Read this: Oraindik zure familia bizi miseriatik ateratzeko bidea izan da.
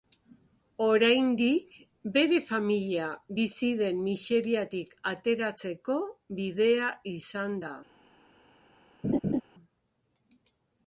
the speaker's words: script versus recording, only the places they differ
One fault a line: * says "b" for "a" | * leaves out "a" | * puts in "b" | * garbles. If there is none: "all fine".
* says "bere" for "zure"
* puts in "den"